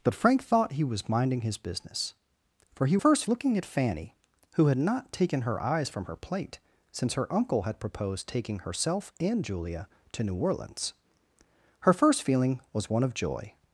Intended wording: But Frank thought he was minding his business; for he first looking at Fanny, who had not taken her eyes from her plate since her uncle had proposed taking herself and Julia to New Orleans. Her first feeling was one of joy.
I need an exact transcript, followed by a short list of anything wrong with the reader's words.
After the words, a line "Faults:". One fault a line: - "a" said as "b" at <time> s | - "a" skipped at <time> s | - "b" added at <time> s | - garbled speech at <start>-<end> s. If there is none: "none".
But Frank thought he was minding his business; for he first looking at Fanny, who had not taken her eyes from her plate since her uncle had proposed taking herself and Julia to New Orleans. Her first feeling was one of joy.
Faults:
none